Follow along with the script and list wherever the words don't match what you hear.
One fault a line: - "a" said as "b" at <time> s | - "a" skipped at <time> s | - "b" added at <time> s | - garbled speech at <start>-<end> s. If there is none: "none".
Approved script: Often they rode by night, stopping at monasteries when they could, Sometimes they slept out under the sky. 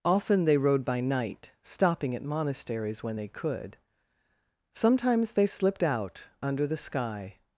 - "slept" said as "slipped" at 5.4 s